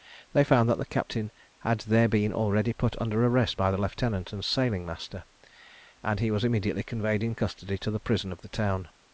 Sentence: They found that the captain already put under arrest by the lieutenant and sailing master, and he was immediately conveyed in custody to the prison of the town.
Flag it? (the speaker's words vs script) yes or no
yes